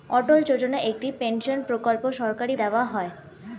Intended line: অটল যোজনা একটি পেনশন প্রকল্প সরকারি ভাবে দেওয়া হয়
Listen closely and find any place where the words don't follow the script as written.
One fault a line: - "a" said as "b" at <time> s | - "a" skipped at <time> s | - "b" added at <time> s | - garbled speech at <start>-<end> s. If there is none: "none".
- "ভাবে" skipped at 2.5 s